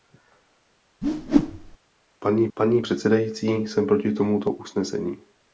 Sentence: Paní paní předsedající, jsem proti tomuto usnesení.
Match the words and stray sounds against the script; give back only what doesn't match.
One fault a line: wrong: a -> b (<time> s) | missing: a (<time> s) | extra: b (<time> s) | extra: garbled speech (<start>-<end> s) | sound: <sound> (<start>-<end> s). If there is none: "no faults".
sound: whoosh (1.0-1.8 s)